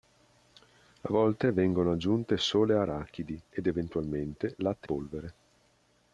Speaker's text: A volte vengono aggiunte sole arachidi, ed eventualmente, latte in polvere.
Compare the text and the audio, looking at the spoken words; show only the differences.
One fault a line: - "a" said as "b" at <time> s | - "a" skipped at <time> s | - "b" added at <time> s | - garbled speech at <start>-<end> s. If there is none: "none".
- "in" skipped at 4.9 s